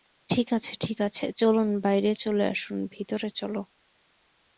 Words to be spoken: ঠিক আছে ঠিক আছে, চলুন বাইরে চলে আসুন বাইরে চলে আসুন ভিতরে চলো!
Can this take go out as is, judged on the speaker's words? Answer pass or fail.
fail